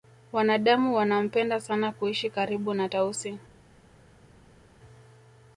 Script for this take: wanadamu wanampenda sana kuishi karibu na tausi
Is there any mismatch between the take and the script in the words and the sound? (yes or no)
no